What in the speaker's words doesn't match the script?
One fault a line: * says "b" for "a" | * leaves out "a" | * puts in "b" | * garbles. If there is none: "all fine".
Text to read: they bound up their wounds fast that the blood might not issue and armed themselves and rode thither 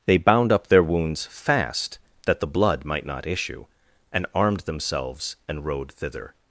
all fine